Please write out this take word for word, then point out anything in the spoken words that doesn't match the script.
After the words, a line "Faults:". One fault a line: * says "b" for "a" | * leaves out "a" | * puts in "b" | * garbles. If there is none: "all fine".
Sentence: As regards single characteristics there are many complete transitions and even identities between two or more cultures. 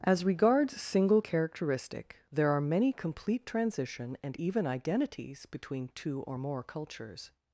As regards single characteristic there are many complete transition and even identities between two or more cultures.
Faults:
* says "characteristic" for "characteristics"
* says "transition" for "transitions"